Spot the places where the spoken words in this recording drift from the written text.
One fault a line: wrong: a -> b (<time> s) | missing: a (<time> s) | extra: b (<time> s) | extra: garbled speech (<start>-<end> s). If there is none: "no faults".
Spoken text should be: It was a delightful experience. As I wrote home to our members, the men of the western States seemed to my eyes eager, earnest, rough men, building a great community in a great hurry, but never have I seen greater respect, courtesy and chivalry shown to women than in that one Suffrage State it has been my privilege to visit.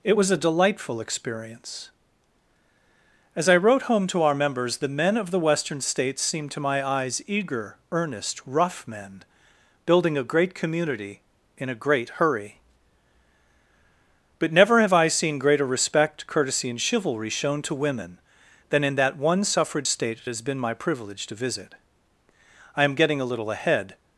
extra: I am getting a little ahead (22.8 s)